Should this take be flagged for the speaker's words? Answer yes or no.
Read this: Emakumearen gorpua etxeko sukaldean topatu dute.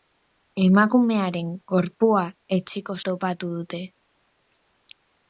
yes